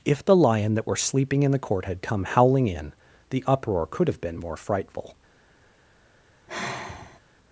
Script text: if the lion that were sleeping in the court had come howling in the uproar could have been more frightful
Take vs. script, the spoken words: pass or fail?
pass